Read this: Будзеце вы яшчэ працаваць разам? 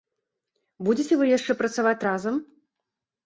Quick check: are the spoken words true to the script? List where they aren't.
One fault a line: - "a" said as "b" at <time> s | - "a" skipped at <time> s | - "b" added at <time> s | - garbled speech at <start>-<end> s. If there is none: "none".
none